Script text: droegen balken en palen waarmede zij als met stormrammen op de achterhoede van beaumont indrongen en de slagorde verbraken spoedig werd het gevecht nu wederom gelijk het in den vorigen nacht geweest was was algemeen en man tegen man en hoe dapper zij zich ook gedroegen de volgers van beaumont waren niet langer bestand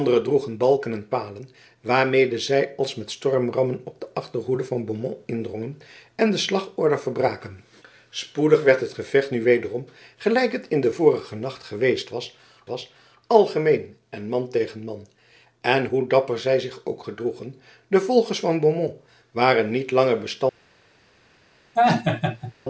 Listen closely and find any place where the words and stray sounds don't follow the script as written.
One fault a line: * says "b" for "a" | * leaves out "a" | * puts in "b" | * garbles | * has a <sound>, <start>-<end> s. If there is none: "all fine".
* has a laugh, 21.8-22.5 s